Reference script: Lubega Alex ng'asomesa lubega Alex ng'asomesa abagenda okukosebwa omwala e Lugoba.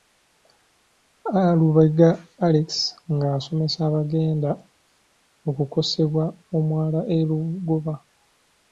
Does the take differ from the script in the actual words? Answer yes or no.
yes